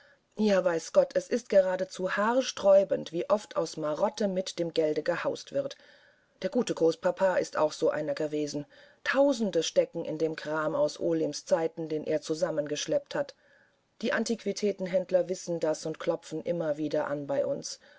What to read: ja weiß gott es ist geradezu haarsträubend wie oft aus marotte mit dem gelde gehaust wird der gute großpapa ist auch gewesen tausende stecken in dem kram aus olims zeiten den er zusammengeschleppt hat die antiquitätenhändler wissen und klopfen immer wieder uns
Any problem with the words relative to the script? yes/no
yes